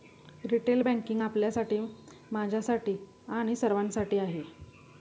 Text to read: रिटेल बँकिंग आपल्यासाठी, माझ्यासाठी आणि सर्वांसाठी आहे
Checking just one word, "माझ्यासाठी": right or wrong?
right